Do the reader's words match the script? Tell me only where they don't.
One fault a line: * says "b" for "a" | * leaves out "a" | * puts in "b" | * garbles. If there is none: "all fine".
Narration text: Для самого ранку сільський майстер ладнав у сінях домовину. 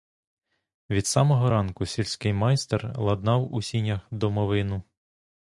* says "Від" for "Для"